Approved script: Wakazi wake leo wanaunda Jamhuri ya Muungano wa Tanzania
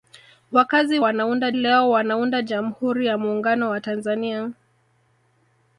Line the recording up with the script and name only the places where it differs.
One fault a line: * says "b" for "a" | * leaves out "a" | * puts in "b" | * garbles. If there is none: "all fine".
* says "wanaunda" for "wake"